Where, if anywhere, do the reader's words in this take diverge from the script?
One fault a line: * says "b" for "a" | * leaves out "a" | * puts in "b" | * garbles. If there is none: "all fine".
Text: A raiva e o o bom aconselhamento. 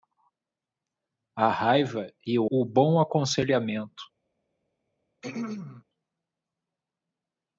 all fine